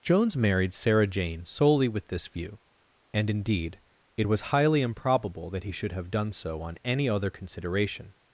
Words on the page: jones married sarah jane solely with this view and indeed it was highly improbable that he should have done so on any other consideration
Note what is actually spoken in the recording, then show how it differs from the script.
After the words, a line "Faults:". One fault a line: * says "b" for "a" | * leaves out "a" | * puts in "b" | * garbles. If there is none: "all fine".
jones married sarah jane solely with this view and indeed it was highly improbable that he should have done so on any other consideration
Faults:
all fine